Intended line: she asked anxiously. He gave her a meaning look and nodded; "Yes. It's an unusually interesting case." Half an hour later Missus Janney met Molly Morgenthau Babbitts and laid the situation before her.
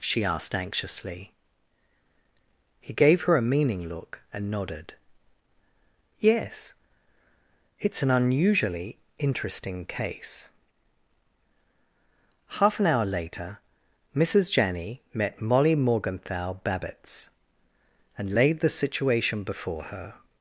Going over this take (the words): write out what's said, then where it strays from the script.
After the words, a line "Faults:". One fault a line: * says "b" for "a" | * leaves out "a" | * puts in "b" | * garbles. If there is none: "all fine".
she asked anxiously. He gave her a meaning look and nodded; "Yes. It's an unusually interesting case." Half an hour later Missus Janney met Molly Morgenthau Babbitts and laid the situation before her.
Faults:
all fine